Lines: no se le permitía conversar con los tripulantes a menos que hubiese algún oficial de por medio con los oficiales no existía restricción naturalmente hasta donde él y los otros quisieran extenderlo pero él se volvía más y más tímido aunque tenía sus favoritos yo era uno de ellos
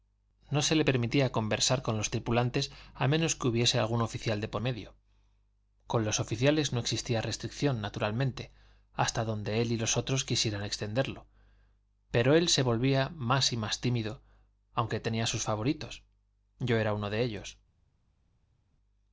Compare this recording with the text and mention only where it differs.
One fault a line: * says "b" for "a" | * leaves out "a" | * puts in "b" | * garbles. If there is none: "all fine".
all fine